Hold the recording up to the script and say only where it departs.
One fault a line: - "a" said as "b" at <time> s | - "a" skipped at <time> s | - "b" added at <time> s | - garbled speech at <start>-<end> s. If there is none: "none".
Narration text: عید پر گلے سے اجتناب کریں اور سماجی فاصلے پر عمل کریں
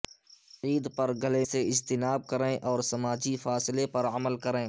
none